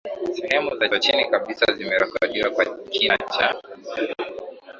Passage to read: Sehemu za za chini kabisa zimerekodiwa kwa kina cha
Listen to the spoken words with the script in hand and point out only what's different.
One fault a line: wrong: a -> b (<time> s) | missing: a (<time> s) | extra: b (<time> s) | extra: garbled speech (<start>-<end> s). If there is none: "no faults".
no faults